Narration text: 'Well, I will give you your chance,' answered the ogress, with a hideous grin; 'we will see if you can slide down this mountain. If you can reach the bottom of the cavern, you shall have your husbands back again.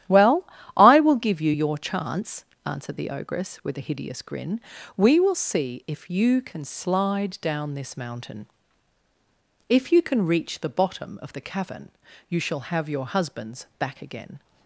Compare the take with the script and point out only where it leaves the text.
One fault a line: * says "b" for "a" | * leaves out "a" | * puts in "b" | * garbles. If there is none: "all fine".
all fine